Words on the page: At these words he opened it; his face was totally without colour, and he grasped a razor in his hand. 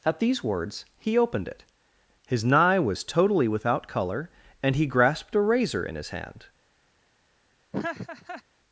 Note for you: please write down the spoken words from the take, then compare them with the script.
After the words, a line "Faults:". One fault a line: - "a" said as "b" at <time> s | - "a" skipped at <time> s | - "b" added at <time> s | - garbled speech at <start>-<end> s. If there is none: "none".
At these words he opened it; his nigh was totally without colour, and he grasped a razor in his hand.
Faults:
- "face" said as "nigh" at 2.4 s